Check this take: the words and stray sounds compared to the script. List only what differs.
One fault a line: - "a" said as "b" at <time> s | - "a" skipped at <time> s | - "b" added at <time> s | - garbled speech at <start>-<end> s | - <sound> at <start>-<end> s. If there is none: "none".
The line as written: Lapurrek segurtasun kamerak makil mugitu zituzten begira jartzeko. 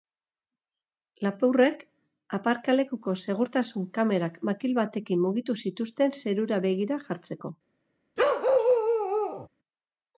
- "aparkalekuko" added at 2.4 s
- "batekin" added at 4.8 s
- "zerura" added at 6.2 s
- bark at 8.2-9.5 s